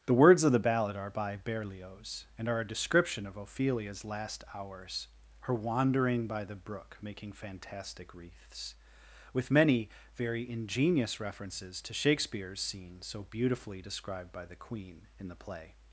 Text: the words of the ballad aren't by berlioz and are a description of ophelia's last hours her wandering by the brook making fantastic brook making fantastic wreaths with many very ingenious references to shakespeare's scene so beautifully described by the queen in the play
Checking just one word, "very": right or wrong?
right